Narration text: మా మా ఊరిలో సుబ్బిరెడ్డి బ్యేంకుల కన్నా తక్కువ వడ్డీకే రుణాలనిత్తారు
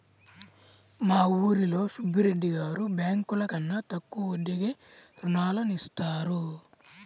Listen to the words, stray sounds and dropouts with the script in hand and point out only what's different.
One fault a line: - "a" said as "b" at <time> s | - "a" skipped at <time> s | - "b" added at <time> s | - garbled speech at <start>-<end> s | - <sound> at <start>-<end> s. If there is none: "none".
- "మా" skipped at 1.2 s
- "గారు" added at 2.5 s